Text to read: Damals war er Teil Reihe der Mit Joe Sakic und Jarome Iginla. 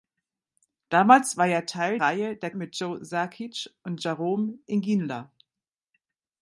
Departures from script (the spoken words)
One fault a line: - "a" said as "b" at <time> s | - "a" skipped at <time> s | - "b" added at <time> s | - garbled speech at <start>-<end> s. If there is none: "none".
none